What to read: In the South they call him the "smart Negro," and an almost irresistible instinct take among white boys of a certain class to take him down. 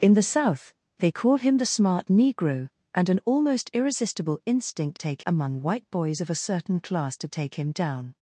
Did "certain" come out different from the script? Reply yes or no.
no